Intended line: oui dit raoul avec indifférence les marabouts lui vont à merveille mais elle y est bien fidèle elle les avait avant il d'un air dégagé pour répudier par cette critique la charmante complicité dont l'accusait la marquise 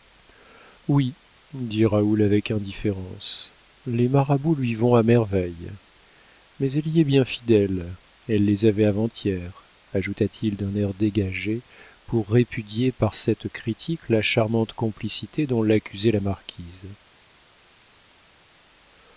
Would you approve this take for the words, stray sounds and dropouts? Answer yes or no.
no